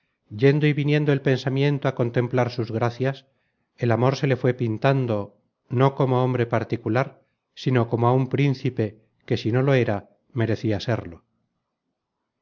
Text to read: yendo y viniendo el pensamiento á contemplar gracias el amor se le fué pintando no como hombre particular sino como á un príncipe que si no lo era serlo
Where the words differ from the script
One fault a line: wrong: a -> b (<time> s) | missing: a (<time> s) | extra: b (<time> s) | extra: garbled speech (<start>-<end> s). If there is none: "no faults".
extra: sus (2.5 s)
extra: merecia (10.4 s)